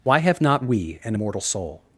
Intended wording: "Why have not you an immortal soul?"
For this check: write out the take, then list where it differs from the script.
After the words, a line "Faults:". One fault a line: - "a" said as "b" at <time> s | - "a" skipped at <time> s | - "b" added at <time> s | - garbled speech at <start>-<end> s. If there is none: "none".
"Why have not we an immortal soul?"
Faults:
- "you" said as "we" at 0.6 s